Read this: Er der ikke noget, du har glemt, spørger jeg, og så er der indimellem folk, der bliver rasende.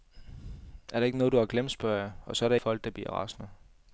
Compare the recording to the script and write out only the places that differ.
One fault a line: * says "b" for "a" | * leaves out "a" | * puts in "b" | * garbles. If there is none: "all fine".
* leaves out "indimellem"